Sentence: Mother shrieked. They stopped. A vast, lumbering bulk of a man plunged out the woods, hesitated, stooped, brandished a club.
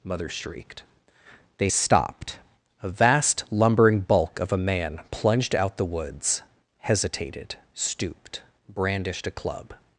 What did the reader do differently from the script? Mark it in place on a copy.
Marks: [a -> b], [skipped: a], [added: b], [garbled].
Mother shrieked. They stopped. A vast, lumbering bulk of a man plunged out the woods, hesitated, stooped, brandished a club.